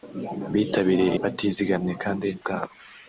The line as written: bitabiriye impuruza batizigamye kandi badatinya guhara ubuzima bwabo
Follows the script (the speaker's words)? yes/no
no